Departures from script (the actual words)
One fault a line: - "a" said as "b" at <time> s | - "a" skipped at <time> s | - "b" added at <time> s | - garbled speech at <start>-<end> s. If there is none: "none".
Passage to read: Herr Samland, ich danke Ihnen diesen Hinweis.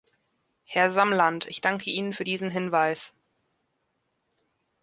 - "für" added at 2.1 s